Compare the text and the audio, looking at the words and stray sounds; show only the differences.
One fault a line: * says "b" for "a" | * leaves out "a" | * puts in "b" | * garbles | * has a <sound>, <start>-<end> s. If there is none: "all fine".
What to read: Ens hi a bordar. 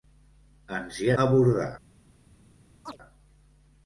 * has a chirp, 2.9-3.0 s